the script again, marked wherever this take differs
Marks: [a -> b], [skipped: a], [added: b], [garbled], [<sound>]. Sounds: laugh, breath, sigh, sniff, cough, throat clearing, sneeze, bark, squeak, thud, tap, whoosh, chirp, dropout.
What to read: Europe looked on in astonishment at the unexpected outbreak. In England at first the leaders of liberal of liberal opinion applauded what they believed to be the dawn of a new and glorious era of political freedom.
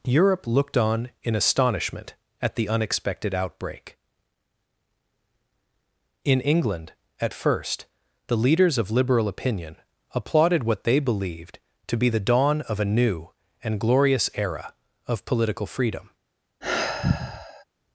Europe looked on in astonishment at the unexpected outbreak. In England at first the leaders of liberal [skipped: of liberal] opinion applauded what they believed to be the dawn of a new and glorious era of political freedom. [sigh]